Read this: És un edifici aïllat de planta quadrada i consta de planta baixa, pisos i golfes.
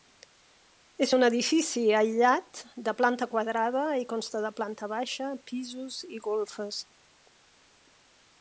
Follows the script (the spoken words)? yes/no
yes